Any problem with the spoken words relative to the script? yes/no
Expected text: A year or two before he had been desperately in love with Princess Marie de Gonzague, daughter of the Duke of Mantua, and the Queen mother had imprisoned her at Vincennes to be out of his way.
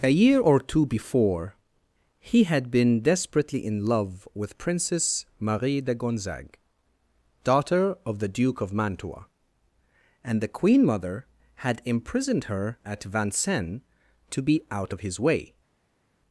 no